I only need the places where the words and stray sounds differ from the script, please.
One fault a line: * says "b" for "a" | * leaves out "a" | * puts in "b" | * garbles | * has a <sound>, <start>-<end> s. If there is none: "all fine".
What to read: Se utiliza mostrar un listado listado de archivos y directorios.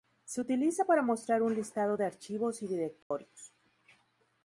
* puts in "para"
* leaves out "listado"
* has a dropout, 3.0-3.1 s